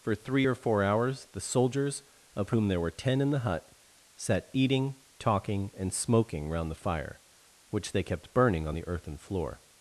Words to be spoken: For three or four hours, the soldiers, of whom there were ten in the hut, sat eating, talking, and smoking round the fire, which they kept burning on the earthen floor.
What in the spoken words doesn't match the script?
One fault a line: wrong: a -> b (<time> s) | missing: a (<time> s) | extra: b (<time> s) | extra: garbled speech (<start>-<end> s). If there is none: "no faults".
no faults